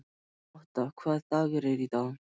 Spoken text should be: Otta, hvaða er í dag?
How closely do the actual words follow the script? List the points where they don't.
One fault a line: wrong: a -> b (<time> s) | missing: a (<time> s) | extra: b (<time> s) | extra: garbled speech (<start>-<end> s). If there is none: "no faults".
extra: dagur (1.4 s)